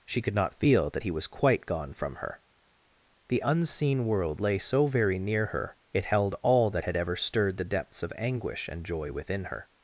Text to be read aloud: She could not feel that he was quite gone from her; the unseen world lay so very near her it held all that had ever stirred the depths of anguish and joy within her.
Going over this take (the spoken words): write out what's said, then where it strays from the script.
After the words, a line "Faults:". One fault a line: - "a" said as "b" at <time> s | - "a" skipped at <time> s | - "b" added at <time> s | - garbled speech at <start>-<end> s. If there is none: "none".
She could not feel that he was quite gone from her; the unseen world lay so very near her it held all that had ever stirred the depths of anguish and joy within her.
Faults:
none